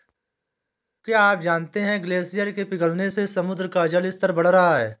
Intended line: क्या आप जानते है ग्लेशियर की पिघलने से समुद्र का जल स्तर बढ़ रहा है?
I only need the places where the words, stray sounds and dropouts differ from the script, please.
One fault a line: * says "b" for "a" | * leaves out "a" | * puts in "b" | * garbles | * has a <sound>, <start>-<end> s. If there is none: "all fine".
* says "के" for "की"